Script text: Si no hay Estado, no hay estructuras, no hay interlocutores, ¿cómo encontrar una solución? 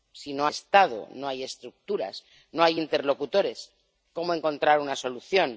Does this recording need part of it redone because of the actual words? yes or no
yes